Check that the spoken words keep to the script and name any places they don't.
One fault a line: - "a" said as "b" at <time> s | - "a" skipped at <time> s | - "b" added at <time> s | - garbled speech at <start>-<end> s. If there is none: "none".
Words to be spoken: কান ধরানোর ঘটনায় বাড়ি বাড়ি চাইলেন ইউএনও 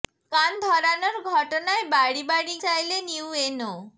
none